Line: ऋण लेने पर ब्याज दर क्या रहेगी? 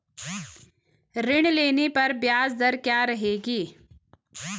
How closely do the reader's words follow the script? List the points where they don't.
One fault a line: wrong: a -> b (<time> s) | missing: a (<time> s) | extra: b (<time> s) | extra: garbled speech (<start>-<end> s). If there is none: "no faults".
no faults